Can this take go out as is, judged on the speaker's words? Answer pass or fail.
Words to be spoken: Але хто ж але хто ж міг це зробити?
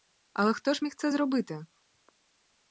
fail